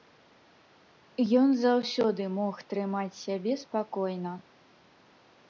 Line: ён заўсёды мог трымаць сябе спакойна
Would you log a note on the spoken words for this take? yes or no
no